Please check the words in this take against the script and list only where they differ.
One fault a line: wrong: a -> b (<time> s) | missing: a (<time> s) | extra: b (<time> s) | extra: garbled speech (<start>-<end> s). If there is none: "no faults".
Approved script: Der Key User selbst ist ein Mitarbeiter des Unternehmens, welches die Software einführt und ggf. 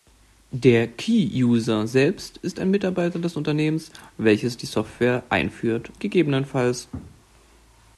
missing: und (5.9 s)